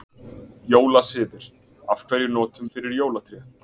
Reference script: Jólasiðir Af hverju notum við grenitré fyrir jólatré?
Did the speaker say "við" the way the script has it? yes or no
no